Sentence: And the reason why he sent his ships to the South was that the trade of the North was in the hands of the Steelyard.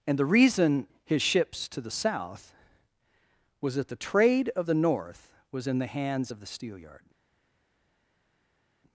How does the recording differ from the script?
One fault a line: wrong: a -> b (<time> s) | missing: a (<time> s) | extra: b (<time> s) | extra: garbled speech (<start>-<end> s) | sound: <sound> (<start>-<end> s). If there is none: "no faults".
missing: why he sent (0.9 s)